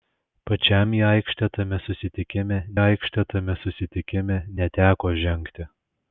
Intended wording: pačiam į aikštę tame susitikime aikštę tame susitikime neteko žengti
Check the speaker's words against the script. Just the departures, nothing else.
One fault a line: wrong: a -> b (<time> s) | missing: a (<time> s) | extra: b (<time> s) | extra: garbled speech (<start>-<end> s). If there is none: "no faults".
no faults